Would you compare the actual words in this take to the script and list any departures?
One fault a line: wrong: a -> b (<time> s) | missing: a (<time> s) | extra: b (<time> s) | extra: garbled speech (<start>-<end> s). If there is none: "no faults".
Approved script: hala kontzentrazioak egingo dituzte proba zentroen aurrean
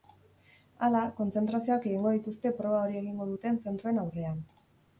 extra: hori egingo duten (2.9 s)